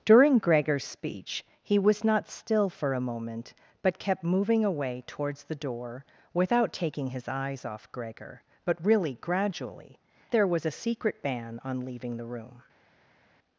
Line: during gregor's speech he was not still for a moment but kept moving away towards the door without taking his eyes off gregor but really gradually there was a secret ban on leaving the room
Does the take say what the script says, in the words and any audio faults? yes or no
yes